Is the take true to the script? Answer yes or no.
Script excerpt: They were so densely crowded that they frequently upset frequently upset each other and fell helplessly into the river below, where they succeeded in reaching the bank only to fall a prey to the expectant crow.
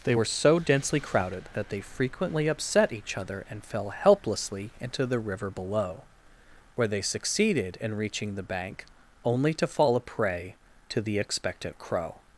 no